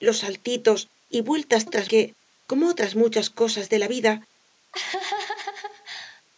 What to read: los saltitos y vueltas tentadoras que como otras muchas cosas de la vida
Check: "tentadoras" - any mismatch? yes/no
yes